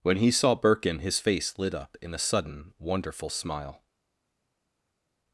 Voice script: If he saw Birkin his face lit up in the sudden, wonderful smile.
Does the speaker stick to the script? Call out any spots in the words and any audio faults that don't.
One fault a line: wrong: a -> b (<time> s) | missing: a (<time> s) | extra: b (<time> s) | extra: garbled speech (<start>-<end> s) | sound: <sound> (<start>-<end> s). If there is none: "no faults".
wrong: If -> When (0.0 s)
wrong: the -> a (2.1 s)